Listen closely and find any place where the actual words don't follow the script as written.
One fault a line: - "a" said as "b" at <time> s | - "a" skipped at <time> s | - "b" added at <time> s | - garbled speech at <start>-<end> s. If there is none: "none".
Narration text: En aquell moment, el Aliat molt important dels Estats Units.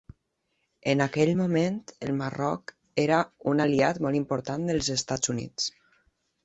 - "Marroc era un" added at 2.2 s